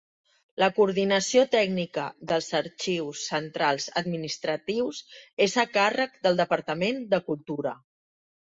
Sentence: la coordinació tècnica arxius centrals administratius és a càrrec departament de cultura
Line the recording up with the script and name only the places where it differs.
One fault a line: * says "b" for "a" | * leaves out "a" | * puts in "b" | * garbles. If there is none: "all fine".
* puts in "dels"
* puts in "del"